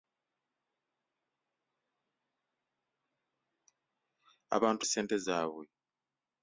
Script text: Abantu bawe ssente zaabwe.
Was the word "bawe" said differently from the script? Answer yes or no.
yes